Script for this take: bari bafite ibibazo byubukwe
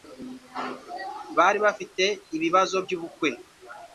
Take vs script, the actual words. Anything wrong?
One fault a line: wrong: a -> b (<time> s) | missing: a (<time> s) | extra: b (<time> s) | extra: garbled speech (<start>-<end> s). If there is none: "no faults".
no faults